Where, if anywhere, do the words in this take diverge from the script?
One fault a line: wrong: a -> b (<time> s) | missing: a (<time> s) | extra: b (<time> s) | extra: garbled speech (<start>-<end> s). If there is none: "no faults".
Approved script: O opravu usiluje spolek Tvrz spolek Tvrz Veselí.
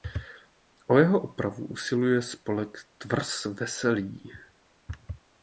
extra: jeho (1.0 s)
missing: spolek Tvrz (3.5 s)